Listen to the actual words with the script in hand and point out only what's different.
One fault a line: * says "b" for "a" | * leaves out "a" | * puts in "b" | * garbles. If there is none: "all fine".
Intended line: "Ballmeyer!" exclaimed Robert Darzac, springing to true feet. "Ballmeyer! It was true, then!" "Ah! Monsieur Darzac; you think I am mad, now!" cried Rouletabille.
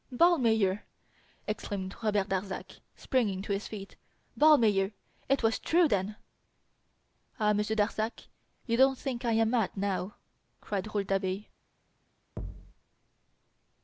* says "his" for "true"
* puts in "don't"